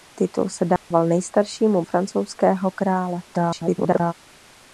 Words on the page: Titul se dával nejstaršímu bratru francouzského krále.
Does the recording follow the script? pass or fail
fail